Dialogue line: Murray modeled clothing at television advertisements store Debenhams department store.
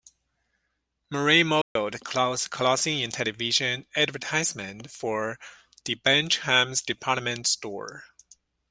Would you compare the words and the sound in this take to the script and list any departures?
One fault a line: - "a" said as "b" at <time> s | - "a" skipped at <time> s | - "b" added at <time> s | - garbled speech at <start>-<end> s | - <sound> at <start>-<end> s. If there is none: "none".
- dropout at 1.6-1.8 s
- "at" said as "in" at 3.0 s
- "store" said as "for" at 5.0 s